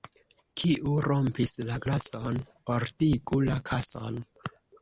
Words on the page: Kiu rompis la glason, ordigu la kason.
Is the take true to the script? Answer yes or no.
yes